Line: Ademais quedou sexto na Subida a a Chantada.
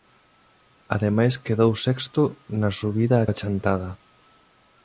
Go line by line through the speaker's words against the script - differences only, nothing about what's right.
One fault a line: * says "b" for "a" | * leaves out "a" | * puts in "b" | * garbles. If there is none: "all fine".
all fine